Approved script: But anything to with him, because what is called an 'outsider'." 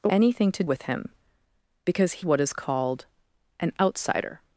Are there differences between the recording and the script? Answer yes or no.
no